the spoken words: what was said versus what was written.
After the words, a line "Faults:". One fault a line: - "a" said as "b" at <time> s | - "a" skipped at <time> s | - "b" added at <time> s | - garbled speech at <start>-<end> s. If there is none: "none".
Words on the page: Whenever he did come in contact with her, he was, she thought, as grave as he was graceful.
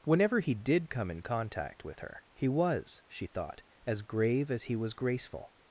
Whenever he did come in contact with her, he was, she thought, as grave as he was graceful.
Faults:
none